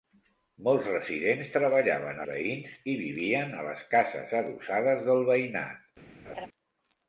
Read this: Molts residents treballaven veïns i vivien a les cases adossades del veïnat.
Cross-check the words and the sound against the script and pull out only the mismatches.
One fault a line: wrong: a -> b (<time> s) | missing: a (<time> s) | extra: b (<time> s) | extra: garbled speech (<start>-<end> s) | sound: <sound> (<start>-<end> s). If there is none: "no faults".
sound: laugh (6.3-6.5 s)